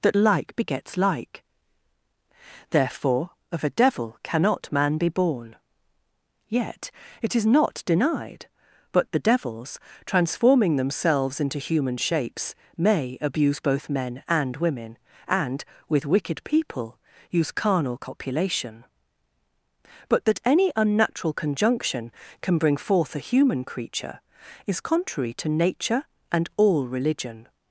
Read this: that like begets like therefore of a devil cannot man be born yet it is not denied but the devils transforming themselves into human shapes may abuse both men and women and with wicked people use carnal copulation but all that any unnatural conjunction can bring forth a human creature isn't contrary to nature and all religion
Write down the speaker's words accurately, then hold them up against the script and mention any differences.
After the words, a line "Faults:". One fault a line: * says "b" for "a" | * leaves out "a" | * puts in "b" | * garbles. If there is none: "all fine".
that like begets like therefore of a devil cannot man be born yet it is not denied but the devils transforming themselves into human shapes may abuse both men and women and with wicked people use carnal copulation but that any unnatural conjunction can bring forth a human creature is contrary to nature and all religion
Faults:
* leaves out "all"
* says "is" for "isn't"